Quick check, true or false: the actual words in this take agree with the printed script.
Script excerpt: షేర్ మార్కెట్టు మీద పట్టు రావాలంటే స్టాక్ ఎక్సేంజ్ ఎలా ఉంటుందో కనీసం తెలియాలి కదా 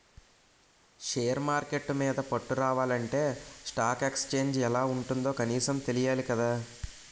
true